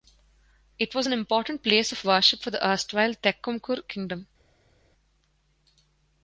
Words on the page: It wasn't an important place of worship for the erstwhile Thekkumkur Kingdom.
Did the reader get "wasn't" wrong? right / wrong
wrong